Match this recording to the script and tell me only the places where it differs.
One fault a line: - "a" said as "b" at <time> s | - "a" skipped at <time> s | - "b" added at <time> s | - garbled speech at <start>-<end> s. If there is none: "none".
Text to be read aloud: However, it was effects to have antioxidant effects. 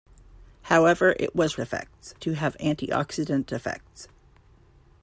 none